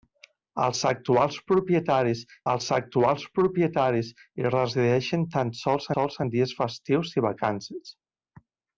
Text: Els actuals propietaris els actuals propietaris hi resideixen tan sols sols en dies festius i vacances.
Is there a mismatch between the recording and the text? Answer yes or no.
no